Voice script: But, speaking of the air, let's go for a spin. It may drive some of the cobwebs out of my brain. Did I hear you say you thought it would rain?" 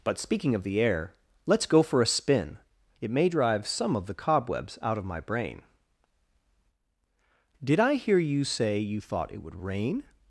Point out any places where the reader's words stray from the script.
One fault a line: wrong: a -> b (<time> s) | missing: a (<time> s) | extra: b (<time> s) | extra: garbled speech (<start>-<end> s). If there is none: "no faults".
no faults